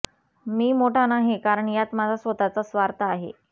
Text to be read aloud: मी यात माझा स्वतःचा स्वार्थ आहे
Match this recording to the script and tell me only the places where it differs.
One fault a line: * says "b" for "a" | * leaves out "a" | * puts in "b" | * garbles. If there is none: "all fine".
* puts in "मोठा नाही कारण"